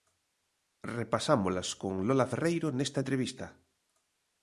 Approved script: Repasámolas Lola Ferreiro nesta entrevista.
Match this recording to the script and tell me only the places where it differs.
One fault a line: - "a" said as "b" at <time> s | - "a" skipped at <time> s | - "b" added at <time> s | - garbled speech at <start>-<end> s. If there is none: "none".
- "con" added at 1.8 s